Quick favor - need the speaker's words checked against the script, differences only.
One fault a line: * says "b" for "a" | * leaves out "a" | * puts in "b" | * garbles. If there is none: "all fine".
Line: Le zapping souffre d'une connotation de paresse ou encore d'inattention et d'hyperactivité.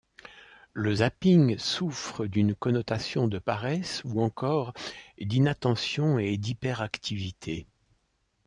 all fine